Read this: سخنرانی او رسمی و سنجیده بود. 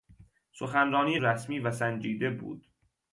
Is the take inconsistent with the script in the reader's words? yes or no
yes